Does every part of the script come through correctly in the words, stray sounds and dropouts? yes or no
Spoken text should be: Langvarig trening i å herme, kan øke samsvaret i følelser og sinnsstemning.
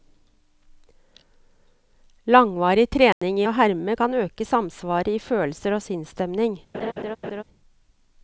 no